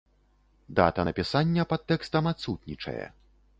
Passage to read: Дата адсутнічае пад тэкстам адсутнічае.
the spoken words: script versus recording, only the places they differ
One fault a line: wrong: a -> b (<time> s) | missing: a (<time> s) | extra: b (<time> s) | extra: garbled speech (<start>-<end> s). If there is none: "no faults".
wrong: адсутнічае -> напісання (1.1 s)